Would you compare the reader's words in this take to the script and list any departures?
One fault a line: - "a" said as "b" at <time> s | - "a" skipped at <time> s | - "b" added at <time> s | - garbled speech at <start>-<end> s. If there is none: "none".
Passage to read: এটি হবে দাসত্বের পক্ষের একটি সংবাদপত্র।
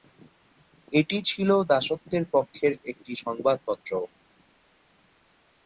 - "হবে" said as "ছিল" at 1.3 s